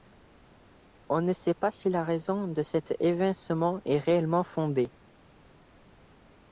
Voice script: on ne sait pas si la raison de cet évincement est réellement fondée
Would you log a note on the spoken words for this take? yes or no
no